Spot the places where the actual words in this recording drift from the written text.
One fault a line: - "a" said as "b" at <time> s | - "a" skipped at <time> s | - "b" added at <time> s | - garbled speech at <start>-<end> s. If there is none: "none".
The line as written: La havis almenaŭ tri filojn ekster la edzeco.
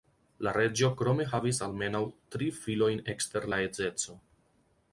- "reĝo krome" added at 0.6 s